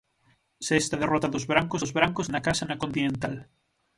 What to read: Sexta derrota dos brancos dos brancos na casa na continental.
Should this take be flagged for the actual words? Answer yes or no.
no